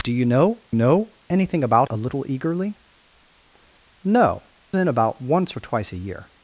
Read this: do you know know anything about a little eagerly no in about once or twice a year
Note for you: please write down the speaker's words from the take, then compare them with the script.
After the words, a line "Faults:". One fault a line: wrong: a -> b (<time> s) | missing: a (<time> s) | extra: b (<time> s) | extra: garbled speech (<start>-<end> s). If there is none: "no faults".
do you know know anything about a little eagerly no in about once or twice a year
Faults:
no faults